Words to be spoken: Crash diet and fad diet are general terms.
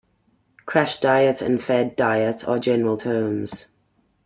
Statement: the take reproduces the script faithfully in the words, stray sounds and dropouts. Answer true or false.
true